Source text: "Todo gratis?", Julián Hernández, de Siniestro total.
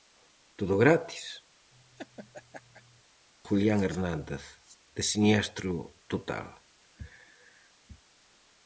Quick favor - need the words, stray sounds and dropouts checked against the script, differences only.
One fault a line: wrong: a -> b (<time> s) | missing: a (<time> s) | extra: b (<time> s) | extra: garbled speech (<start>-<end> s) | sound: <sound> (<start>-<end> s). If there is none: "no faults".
sound: laugh (1.7-3.0 s)